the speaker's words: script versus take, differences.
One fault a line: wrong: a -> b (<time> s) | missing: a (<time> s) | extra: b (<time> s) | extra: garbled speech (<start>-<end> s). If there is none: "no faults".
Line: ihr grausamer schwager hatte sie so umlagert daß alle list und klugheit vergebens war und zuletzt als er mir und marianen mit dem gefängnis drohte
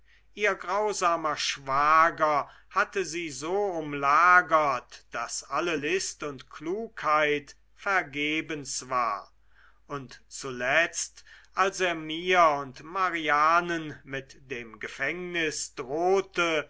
no faults